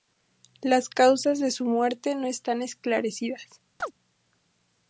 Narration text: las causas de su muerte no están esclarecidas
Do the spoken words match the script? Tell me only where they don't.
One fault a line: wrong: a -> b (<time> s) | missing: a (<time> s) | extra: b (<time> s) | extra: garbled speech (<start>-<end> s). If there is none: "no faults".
no faults